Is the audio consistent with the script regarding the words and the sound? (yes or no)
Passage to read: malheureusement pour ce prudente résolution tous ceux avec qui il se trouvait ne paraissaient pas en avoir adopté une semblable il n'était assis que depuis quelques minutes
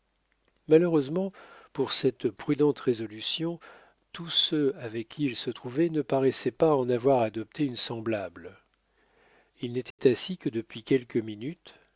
no